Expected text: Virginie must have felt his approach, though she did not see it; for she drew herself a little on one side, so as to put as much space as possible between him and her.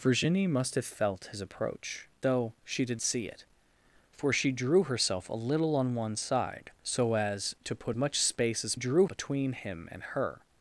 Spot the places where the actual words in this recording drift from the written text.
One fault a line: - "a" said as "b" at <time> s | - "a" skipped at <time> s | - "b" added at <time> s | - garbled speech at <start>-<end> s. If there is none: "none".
- "not" skipped at 3.0 s
- "as" skipped at 8.0 s
- "possible" said as "drew" at 8.7 s